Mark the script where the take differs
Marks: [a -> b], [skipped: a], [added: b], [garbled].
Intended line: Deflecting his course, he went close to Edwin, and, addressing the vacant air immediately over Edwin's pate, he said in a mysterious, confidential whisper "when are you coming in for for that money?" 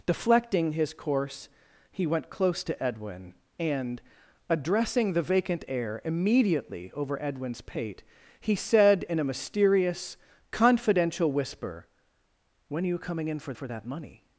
Deflecting his course, he went close to Edwin, and, addressing the vacant air immediately over Edwin's pate, he said in a mysterious, confidential whisper "when are you coming in for for that money?"